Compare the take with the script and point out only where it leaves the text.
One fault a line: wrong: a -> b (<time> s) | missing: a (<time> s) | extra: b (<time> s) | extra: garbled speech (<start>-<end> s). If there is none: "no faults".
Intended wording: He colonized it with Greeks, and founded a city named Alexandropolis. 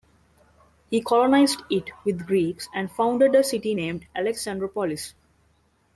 no faults